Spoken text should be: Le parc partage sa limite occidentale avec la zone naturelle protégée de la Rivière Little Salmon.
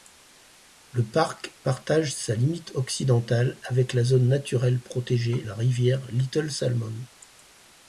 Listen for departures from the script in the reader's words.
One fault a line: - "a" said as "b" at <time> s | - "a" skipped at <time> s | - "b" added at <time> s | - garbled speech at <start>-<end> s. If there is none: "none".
- "de" skipped at 5.5 s